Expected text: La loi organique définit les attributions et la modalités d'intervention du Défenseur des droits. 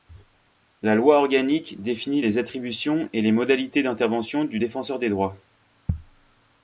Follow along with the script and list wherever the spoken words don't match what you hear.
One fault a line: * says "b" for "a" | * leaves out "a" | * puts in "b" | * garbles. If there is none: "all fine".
* says "les" for "la"